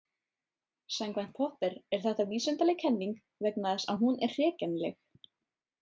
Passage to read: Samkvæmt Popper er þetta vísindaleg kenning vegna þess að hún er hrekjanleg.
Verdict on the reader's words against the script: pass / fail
pass